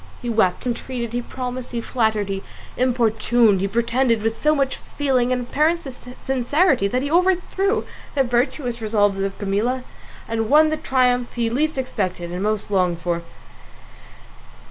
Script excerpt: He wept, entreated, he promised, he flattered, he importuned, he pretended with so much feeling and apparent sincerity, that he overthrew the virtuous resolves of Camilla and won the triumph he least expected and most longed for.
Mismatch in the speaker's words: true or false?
false